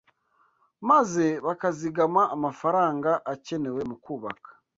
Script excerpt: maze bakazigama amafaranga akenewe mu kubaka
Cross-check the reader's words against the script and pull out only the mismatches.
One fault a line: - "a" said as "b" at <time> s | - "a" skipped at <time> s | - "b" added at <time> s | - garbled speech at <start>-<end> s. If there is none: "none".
none